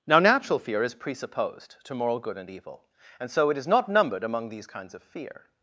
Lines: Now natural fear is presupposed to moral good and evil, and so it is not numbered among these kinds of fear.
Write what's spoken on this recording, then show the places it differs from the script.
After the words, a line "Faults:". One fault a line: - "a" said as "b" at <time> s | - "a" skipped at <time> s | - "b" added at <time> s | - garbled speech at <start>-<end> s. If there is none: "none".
Now natural fear is presupposed to moral good and evil, and so it is not numbered among these kinds of fear.
Faults:
none